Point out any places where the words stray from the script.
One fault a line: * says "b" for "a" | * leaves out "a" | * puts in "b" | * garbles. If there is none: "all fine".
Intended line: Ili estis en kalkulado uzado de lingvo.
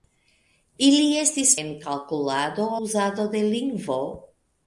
all fine